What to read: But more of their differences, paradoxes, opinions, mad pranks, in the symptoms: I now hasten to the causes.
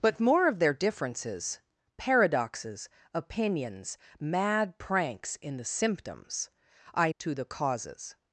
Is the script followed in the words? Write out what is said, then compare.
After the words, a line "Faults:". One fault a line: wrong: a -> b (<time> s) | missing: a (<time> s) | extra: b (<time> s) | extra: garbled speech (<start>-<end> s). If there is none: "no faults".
But more of their differences, paradoxes, opinions, mad pranks, in the symptoms: I to the causes.
Faults:
missing: now hasten (7.1 s)